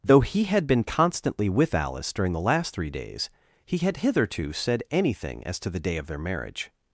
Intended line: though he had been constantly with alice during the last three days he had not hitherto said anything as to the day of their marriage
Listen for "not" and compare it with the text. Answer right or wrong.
wrong